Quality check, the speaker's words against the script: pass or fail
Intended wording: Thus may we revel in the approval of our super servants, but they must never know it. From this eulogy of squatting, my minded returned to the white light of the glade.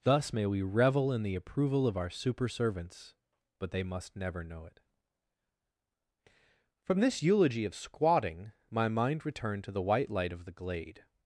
fail